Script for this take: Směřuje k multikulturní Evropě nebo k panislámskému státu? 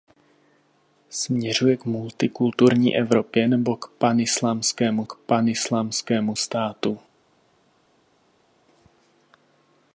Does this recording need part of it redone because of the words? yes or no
yes